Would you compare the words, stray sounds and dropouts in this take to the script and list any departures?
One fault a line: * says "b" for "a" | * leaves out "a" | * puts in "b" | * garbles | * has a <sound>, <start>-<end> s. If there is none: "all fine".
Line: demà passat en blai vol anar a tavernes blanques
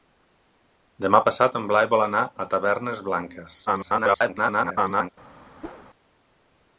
* garbles
* has a whoosh, 5.6-5.9 s